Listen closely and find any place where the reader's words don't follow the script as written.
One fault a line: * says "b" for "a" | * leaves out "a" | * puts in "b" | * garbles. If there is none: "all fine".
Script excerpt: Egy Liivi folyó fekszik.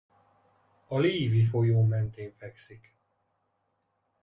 * says "A" for "Egy"
* puts in "mentén"